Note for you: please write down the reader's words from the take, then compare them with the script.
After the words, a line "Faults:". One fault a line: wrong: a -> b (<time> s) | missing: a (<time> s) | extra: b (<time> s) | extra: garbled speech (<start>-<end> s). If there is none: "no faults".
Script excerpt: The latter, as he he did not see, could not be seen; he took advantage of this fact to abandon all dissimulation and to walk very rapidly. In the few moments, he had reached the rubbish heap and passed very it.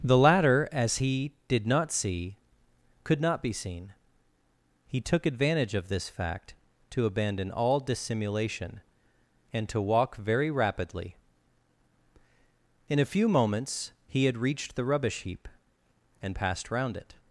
The latter, as he did not see, could not be seen; he took advantage of this fact to abandon all dissimulation and to walk very rapidly. In a few moments, he had reached the rubbish heap and passed round it.
Faults:
missing: he (1.3 s)
wrong: the -> a (13.0 s)
wrong: very -> round (16.7 s)